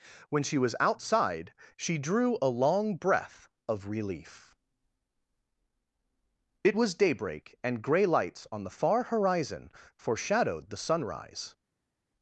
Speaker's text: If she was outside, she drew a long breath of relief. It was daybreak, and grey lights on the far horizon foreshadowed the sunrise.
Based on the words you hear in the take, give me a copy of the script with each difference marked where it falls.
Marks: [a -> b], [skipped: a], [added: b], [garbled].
[If -> When] she was outside, she drew a long breath of relief. It was daybreak, and grey lights on the far horizon foreshadowed the sunrise.